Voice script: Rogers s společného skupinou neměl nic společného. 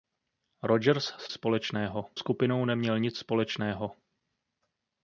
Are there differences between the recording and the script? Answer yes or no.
no